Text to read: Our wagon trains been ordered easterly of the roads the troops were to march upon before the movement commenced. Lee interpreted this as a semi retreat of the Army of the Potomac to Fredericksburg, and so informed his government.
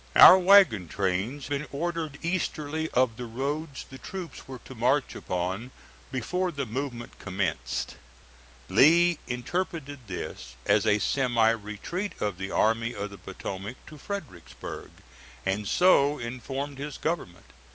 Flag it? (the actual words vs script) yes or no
no